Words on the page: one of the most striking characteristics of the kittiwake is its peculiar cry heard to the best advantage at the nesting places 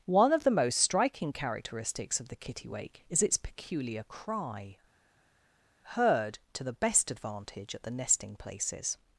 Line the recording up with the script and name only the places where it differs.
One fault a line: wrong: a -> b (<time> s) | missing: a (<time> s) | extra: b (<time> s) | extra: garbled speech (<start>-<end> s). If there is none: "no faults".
no faults